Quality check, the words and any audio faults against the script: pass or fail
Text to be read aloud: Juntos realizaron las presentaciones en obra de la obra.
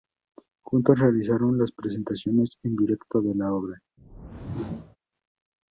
fail